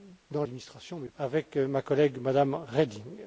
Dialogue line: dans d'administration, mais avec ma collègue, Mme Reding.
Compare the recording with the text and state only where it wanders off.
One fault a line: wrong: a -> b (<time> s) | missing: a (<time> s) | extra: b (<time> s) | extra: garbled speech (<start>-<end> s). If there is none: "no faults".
no faults